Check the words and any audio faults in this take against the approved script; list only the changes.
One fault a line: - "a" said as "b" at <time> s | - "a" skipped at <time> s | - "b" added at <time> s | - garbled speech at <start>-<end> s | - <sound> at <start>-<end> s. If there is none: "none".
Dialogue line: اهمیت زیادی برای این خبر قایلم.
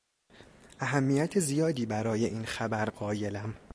none